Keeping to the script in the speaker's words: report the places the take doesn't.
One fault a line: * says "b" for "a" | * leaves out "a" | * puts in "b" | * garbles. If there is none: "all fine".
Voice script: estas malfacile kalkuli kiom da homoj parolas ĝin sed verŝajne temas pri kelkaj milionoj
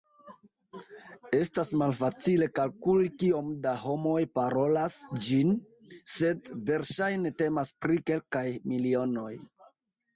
all fine